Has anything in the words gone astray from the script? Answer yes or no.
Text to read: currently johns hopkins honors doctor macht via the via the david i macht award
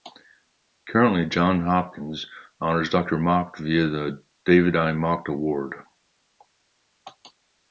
yes